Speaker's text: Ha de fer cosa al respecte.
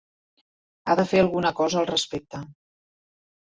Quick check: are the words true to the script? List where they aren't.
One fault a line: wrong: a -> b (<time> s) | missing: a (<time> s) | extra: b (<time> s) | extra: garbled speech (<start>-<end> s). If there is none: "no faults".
extra: alguna (1.2 s)